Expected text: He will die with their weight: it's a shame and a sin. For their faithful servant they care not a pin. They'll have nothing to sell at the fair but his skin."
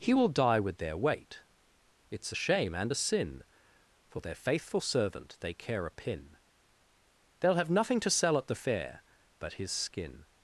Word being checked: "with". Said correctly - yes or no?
yes